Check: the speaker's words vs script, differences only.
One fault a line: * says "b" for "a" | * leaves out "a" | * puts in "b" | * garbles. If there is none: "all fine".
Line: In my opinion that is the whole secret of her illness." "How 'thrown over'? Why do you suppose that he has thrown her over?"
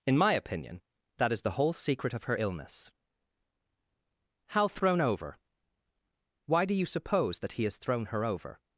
all fine